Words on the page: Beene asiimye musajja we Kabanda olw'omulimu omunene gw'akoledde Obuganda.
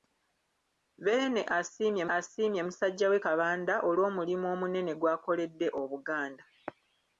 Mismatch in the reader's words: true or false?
true